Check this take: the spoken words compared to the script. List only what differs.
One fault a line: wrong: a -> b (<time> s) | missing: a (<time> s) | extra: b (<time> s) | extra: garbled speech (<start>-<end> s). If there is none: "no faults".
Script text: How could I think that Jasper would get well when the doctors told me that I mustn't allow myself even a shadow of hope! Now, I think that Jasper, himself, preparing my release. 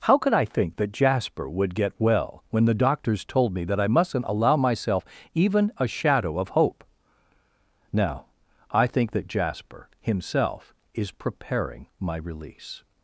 extra: is (10.9 s)